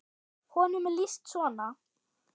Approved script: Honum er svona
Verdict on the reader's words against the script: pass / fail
fail